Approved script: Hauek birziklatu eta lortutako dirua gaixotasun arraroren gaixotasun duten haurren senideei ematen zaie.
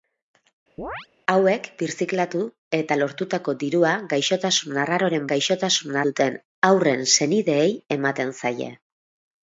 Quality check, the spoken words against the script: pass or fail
pass